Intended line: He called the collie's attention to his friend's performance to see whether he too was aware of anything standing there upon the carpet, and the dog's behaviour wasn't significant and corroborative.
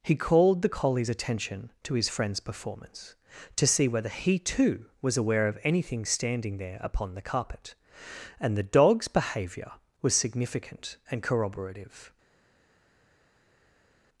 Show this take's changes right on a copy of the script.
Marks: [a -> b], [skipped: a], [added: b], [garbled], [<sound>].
He called the collie's attention to his friend's performance to see whether he too was aware of anything standing there upon the carpet, and the dog's behaviour [wasn't -> was] significant and corroborative.